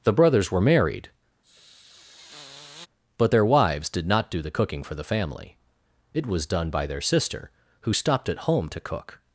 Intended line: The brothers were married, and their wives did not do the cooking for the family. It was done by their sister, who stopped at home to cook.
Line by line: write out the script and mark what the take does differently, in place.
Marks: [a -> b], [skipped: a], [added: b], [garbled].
The brothers were married, [and -> but] their wives did not do the cooking for the family. It was done by their sister, who stopped at home to cook.